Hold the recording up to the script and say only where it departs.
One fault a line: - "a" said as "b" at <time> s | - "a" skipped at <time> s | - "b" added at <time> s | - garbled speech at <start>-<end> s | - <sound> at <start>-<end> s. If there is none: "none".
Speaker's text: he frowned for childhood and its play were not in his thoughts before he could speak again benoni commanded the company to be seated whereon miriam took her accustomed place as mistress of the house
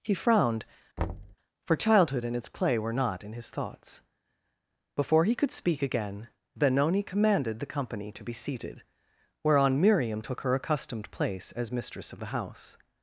- thud at 1.0-1.4 s